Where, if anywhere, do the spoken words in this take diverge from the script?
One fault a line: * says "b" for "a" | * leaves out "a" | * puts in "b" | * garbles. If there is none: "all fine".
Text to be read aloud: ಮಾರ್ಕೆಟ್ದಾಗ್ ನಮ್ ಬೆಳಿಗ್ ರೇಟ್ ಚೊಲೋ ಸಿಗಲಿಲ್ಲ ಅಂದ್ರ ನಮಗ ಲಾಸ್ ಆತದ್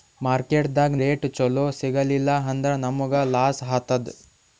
* leaves out "ನಮ್ ಬೆಳಿಗ್"